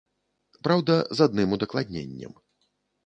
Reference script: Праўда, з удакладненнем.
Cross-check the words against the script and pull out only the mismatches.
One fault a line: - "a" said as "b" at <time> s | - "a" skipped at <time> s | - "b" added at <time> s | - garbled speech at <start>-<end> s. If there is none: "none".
- "адным" added at 1.3 s